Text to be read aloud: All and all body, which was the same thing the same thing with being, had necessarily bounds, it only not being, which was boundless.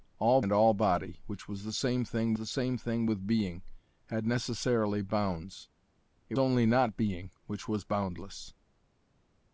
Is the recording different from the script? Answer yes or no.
no